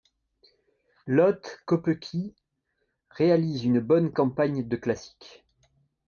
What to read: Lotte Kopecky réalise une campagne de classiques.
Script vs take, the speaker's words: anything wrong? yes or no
yes